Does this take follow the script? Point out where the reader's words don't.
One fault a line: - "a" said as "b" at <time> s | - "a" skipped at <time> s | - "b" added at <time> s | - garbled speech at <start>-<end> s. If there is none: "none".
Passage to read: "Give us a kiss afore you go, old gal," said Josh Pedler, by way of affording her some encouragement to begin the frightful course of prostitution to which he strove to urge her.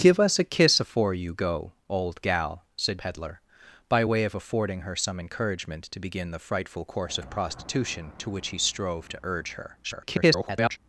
- "Josh" skipped at 3.0 s
- garbled speech at 9.8-10.8 s